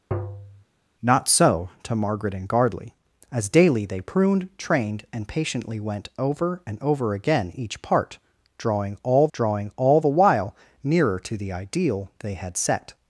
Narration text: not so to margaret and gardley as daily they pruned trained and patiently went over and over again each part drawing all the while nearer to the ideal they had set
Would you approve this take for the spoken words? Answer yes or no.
no